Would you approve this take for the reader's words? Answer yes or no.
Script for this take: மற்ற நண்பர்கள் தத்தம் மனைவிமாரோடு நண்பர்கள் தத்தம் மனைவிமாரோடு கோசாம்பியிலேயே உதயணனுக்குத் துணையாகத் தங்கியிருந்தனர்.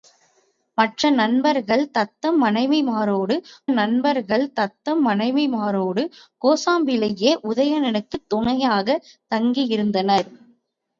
yes